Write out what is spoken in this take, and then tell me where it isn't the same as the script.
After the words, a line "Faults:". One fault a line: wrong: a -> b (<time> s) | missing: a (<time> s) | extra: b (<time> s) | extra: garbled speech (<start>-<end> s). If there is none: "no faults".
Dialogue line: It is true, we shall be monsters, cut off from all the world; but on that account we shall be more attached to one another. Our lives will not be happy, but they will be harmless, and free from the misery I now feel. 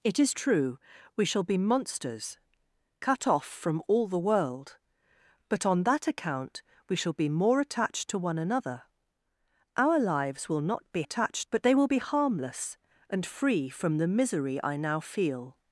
It is true, we shall be monsters, cut off from all the world; but on that account we shall be more attached to one another. Our lives will not be attached, but they will be harmless, and free from the misery I now feel.
Faults:
wrong: happy -> attached (11.0 s)